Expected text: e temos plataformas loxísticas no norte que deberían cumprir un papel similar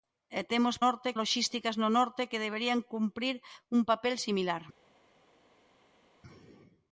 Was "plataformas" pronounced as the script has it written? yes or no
no